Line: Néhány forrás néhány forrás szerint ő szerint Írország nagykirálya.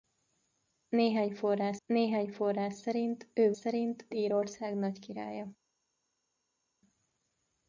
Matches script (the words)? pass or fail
pass